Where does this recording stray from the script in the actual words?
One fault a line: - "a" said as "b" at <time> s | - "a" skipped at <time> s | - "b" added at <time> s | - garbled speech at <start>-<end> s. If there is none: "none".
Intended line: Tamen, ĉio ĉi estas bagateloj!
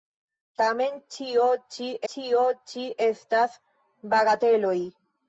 - "ĉio ĉi" added at 2.1 s